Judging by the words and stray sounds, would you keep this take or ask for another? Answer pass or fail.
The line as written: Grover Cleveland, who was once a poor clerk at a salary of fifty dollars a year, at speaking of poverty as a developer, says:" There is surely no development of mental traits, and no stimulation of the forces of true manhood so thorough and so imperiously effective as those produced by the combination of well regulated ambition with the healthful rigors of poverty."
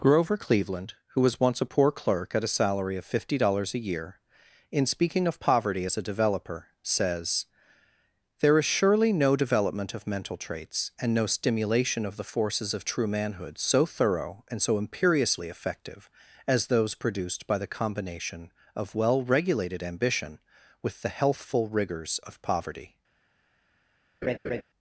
fail